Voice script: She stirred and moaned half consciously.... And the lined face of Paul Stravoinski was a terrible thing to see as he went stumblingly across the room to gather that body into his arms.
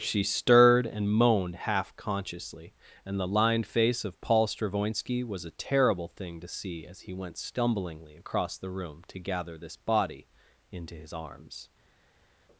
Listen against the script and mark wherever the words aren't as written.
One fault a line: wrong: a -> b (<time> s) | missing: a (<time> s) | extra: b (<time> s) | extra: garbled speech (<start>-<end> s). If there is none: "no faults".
wrong: that -> this (9.6 s)